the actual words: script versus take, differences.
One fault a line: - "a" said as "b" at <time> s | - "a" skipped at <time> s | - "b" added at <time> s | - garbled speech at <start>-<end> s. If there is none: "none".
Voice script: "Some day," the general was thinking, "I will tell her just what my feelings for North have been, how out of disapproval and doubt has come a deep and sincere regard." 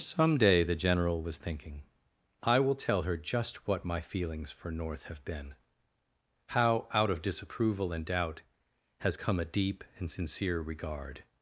none